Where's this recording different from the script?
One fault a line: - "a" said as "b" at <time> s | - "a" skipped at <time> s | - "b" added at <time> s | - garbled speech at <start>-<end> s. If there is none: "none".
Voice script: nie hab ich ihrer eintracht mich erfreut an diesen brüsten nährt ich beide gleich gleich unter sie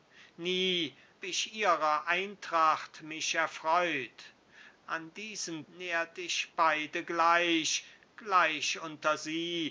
- "hab" skipped at 1.0 s
- "brüsten" skipped at 5.6 s